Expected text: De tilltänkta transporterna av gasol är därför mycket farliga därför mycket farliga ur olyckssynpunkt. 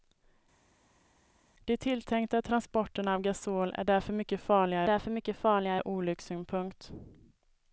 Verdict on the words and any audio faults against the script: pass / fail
pass